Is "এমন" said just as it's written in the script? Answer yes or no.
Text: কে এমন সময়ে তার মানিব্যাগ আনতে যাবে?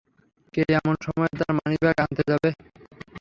yes